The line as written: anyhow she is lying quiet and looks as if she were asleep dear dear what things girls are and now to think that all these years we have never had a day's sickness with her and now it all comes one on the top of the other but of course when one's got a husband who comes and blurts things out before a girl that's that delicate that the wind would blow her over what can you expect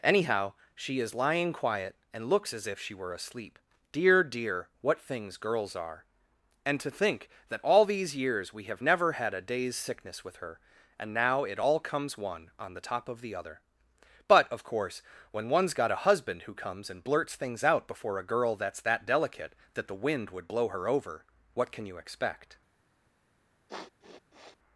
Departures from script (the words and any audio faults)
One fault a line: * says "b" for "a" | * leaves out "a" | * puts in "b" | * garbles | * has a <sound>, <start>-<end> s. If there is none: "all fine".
* leaves out "now"
* has a sniff, 23.7-24.6 s